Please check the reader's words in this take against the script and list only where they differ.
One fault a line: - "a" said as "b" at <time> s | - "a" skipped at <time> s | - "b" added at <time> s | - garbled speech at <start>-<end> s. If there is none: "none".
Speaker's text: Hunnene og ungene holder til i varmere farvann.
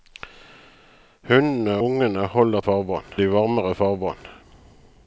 - "og" skipped at 1.8 s
- "til" said as "farvann" at 2.6 s